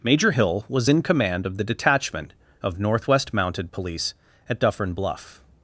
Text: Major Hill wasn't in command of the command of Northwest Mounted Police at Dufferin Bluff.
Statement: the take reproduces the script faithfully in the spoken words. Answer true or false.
false